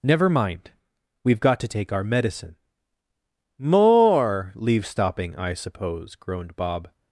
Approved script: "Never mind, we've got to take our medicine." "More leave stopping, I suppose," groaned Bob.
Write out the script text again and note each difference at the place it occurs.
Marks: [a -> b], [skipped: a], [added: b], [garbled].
"Never mind, we've got to take our medicine." "More leave stopping, I suppose," groaned Bob.